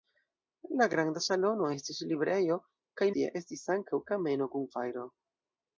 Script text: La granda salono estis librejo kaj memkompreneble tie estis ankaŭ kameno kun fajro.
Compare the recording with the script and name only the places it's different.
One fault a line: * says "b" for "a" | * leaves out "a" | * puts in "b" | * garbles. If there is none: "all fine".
* leaves out "memkompreneble"